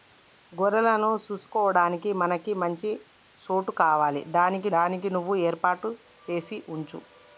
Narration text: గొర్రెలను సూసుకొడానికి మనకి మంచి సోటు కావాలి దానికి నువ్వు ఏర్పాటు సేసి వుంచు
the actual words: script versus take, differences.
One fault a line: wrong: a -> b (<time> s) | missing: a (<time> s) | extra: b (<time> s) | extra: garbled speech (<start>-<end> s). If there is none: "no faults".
extra: దానికి (4.8 s)